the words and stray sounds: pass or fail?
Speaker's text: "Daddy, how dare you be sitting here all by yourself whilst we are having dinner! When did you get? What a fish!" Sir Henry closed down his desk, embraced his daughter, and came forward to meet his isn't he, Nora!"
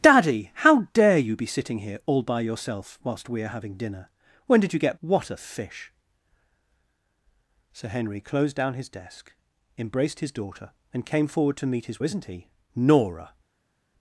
pass